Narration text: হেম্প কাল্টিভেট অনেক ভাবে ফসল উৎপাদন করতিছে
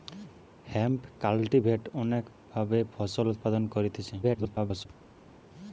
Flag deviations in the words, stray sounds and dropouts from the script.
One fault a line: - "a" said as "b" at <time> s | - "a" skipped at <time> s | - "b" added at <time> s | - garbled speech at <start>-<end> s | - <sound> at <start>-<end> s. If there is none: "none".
- garbled speech at 4.2-4.9 s